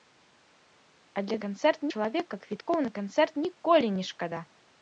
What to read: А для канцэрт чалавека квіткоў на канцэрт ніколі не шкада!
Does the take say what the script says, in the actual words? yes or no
yes